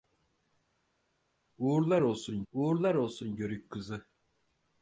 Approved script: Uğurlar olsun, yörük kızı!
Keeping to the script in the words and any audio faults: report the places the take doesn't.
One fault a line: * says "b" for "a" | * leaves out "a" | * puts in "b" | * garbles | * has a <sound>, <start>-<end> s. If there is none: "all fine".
* puts in "uğurlar olsun"